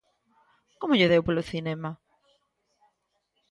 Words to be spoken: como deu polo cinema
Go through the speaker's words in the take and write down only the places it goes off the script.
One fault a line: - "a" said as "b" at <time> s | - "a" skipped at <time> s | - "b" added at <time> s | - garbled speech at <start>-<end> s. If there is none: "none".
- "lle" added at 1.0 s